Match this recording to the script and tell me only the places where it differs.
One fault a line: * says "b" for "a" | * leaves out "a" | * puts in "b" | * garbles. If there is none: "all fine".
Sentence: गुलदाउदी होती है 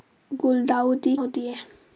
all fine